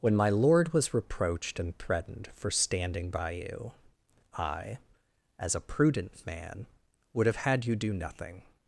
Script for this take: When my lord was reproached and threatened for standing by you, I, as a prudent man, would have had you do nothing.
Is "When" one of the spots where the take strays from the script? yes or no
no